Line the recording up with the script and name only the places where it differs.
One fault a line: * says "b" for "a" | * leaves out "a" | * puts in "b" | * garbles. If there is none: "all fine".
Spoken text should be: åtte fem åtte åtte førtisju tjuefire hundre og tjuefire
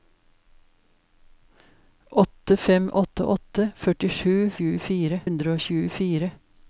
all fine